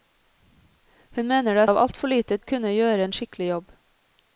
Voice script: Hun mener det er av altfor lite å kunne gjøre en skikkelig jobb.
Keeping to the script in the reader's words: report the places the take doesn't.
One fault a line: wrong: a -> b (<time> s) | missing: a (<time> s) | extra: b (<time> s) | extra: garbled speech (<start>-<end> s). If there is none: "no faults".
no faults